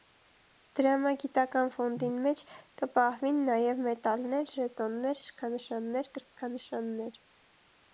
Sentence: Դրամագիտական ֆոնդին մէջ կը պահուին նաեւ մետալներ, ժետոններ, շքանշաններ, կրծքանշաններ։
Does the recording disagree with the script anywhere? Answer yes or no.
no